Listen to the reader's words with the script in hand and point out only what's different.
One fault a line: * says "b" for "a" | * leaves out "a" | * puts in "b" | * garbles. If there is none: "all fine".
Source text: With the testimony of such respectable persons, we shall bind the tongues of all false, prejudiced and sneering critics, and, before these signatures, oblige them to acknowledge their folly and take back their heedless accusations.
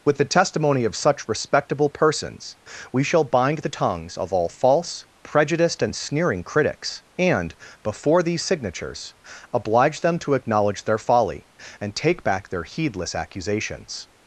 all fine